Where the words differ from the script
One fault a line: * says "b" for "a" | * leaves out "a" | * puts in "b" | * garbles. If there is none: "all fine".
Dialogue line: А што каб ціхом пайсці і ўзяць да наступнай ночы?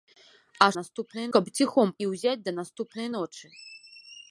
* says "наступнай" for "што"
* leaves out "пайсці"